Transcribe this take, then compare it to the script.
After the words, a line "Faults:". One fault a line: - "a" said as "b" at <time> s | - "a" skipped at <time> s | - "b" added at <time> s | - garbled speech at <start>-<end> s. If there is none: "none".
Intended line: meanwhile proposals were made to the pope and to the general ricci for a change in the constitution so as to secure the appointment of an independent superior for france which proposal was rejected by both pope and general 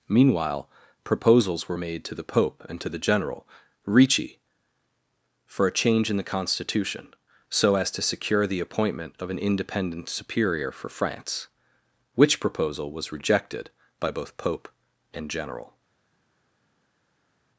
meanwhile proposals were made to the pope and to the general ricci for a change in the constitution so as to secure the appointment of an independent superior for france which proposal was rejected by both pope and general
Faults:
none